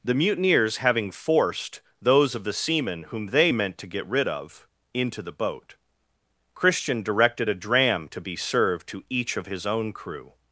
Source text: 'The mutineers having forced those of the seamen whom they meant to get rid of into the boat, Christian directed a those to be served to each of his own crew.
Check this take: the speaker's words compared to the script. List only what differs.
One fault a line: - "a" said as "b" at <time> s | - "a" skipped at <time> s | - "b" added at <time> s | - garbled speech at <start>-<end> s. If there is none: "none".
- "those" said as "dram" at 7.5 s